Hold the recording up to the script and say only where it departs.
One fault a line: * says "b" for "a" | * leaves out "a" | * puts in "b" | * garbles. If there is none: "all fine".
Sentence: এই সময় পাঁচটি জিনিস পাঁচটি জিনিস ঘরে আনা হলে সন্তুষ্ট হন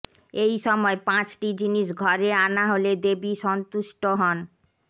* leaves out "পাঁচটি জিনিস"
* puts in "দেবী"